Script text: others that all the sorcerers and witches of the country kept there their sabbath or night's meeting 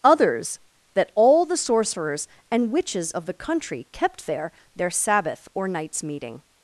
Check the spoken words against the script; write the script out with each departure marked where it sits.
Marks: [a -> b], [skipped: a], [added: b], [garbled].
others that all the sorcerers and witches of the country kept there their sabbath or night's meeting